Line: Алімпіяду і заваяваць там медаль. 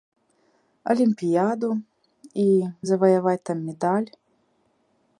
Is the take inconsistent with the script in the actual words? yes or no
no